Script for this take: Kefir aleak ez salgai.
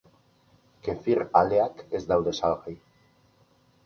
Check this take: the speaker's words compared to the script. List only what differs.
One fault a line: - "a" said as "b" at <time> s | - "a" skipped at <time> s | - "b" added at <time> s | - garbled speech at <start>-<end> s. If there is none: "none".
- "daude" added at 2.1 s